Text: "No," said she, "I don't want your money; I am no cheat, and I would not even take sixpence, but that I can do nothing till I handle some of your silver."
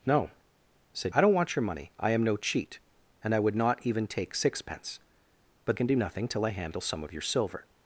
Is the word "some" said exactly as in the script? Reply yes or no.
yes